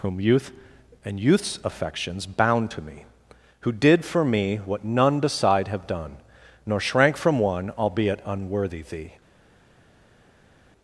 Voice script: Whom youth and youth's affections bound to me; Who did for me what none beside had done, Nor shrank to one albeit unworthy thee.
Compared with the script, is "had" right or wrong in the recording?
wrong